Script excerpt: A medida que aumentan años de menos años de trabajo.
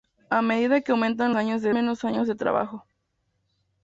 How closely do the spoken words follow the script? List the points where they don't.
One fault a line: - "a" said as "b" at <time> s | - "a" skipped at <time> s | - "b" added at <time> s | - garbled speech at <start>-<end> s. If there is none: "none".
none